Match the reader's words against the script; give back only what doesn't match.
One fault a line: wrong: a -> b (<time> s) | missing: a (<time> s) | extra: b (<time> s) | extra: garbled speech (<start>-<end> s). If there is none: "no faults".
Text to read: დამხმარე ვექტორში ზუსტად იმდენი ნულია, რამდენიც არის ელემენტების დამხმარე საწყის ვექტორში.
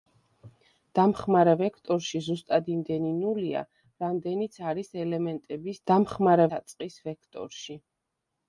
no faults